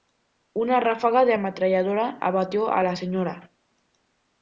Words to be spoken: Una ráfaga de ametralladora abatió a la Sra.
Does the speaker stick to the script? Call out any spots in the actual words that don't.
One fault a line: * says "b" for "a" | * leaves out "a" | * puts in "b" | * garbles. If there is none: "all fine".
all fine